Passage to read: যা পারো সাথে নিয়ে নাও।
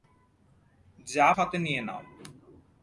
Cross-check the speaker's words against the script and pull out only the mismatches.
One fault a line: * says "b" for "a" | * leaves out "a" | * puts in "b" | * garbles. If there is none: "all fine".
* leaves out "পারো"